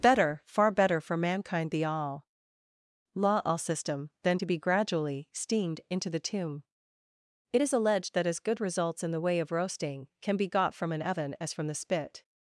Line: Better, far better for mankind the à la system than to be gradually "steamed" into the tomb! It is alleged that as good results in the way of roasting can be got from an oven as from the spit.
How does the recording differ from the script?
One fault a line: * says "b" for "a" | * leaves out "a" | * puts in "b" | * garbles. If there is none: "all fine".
* says "all law all" for "à la"